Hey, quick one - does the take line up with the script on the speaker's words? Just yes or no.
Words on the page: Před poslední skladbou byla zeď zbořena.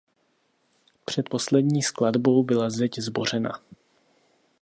yes